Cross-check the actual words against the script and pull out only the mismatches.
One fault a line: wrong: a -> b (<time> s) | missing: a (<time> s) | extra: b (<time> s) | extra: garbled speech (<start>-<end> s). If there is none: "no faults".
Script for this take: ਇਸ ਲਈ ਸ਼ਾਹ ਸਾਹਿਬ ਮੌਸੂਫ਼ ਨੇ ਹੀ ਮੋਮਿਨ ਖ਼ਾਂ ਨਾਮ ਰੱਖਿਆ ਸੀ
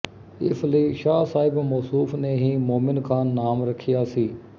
no faults